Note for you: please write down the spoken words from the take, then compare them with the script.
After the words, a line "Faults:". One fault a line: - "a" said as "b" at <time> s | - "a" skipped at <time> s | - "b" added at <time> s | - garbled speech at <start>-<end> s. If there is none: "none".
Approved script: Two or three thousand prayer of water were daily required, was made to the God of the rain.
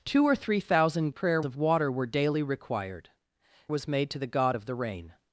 Two or three thousand prayer of water were daily required, was made to the God of the rain.
Faults:
none